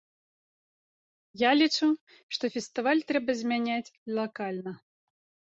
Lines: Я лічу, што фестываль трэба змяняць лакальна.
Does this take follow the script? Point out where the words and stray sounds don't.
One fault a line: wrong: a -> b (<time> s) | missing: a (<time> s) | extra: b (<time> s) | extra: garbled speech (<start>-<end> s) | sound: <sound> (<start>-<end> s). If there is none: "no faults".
no faults